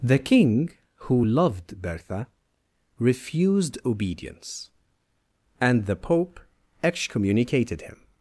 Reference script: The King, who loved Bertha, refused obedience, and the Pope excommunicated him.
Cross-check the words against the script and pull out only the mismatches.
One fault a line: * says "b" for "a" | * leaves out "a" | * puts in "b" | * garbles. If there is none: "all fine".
all fine